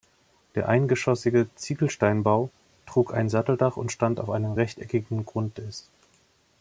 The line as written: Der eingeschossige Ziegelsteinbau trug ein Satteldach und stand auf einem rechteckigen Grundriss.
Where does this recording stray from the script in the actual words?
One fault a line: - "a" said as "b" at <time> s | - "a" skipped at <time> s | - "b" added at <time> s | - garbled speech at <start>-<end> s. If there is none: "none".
none